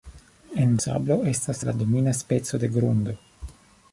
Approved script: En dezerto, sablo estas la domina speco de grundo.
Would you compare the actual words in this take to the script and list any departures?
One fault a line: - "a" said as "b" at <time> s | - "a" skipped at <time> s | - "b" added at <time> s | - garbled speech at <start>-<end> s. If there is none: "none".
- "dezerto" skipped at 0.8 s